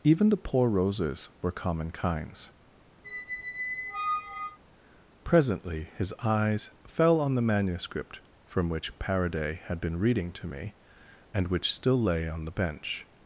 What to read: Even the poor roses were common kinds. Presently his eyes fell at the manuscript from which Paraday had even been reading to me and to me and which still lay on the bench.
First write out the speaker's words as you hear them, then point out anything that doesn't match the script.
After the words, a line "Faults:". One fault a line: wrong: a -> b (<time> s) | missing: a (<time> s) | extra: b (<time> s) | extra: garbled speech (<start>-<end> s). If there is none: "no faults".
Even the poor roses were common kinds. Presently his eyes fell on the manuscript from which Paraday had been reading to me and which still lay on the bench.
Faults:
wrong: at -> on (7.2 s)
missing: even (9.8 s)
missing: to me and (11.5 s)